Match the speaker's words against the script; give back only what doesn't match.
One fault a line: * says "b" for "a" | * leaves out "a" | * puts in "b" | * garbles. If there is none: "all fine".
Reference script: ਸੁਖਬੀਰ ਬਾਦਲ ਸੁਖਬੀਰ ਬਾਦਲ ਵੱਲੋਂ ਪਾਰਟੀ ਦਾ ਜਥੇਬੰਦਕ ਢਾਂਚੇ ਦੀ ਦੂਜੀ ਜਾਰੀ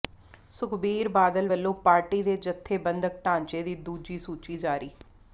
* leaves out "ਸੁਖਬੀਰ ਬਾਦਲ"
* says "ਦੇ" for "ਦਾ"
* puts in "ਸੂਚੀ"